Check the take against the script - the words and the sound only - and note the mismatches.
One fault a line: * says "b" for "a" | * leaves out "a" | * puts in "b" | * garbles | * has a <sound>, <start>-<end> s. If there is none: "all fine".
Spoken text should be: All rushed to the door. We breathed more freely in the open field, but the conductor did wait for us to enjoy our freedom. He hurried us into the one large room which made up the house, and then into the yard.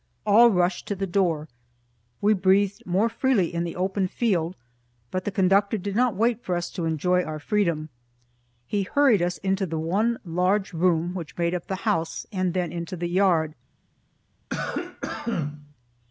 * puts in "not"
* has a cough, 14.5-15.7 s